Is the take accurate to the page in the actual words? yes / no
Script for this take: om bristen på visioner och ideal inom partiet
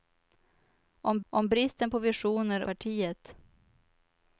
no